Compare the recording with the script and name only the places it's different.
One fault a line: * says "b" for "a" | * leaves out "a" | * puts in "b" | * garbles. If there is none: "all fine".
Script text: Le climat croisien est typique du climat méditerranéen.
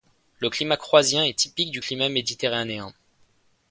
all fine